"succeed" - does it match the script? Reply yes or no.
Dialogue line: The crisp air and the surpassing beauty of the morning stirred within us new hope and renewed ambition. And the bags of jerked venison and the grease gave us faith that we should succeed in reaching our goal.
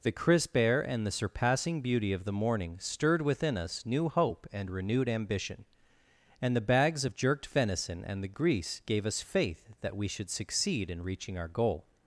yes